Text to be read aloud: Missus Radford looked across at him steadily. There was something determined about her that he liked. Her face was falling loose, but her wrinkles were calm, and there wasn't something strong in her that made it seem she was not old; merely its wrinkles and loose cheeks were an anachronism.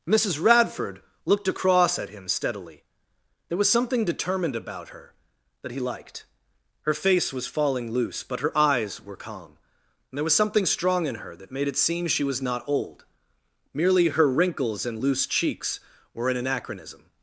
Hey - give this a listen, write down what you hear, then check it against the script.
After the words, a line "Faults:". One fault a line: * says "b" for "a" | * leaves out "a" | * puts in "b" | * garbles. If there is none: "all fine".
Missus Radford looked across at him steadily. There was something determined about her that he liked. Her face was falling loose, but her eyes were calm, and there was something strong in her that made it seem she was not old; merely her wrinkles and loose cheeks were an anachronism.
Faults:
* says "eyes" for "wrinkles"
* says "was" for "wasn't"
* says "her" for "its"